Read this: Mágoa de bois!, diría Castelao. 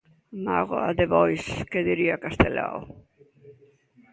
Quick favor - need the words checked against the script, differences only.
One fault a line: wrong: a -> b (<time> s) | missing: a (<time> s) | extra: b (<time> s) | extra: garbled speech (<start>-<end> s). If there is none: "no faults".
extra: que (1.7 s)